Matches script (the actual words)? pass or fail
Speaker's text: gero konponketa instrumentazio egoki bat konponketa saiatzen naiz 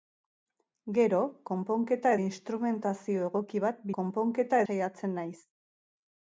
pass